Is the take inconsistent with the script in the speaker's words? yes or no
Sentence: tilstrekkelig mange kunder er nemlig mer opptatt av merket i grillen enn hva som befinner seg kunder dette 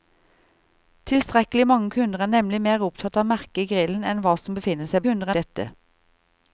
no